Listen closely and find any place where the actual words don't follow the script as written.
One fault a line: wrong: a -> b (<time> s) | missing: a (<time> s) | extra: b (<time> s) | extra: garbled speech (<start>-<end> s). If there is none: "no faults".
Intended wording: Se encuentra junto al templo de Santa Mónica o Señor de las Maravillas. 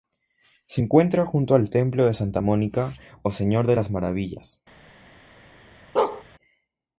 no faults